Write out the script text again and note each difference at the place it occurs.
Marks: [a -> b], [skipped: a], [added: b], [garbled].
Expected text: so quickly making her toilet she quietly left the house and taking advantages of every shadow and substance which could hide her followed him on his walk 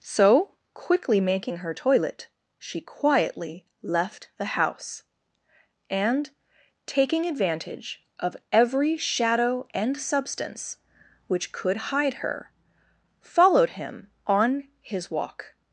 so quickly making her toilet she quietly left the house and taking [advantages -> advantage] of every shadow and substance which could hide her followed him on his walk